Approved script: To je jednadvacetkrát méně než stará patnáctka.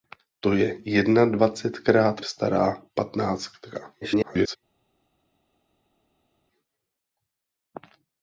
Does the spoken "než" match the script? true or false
false